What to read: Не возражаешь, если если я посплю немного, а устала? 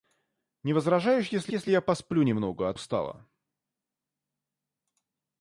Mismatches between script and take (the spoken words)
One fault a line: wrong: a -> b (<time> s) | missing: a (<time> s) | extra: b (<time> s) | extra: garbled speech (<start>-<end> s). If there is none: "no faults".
no faults